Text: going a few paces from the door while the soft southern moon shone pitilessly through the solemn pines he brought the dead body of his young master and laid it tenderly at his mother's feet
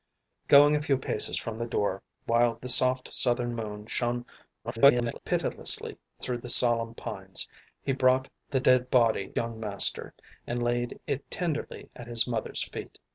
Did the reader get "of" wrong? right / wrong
wrong